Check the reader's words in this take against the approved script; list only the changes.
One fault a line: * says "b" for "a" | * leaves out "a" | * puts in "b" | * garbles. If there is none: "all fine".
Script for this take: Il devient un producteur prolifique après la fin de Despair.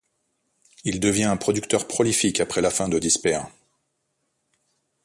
all fine